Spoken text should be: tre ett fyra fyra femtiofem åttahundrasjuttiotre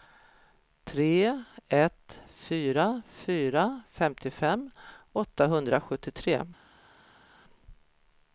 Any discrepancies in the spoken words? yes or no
no